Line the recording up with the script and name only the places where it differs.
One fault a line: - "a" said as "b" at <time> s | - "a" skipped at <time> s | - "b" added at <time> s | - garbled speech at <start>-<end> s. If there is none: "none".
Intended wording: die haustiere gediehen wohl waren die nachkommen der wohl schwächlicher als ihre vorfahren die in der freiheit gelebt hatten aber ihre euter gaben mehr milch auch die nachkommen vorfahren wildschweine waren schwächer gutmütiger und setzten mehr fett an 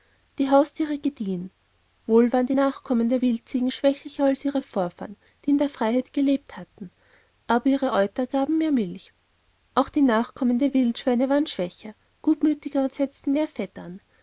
- "wohl" said as "wildziegen" at 3.2 s
- "vorfahren" said as "der" at 10.6 s